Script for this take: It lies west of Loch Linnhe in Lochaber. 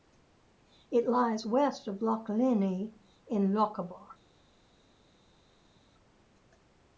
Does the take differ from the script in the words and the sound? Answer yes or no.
no